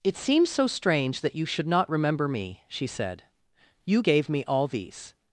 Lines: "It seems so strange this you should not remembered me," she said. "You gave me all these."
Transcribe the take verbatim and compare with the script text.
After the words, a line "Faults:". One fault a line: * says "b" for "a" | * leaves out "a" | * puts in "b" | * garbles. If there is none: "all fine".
"It seems so strange that you should not remember me," she said. "You gave me all these."
Faults:
* says "that" for "this"
* says "remember" for "remembered"